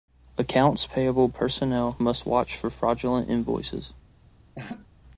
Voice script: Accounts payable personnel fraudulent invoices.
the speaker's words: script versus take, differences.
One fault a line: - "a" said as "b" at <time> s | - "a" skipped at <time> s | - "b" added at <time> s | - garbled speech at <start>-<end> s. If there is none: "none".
- "must watch for" added at 2.0 s